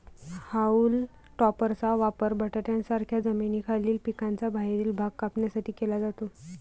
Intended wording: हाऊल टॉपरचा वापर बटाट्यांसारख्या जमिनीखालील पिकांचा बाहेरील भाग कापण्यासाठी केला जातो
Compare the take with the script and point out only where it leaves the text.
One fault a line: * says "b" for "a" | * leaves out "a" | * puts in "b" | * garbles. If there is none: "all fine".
all fine